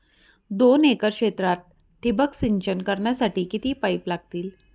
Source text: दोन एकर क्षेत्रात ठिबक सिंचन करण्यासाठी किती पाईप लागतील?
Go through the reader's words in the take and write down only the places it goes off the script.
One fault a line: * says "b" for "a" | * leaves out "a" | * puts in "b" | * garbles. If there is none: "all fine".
all fine